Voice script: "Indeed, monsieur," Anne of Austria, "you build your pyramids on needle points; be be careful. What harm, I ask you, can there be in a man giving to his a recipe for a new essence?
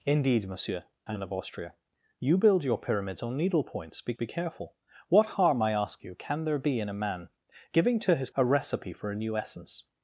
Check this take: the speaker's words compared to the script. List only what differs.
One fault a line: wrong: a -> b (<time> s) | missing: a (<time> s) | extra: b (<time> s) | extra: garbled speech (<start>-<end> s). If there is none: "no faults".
no faults